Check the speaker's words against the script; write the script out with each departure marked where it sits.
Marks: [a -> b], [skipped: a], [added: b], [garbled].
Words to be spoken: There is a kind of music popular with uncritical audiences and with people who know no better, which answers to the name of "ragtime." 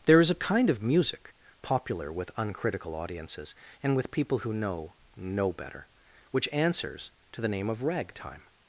There is a kind of music popular with uncritical audiences and with people who know no better, which answers to the name of "ragtime."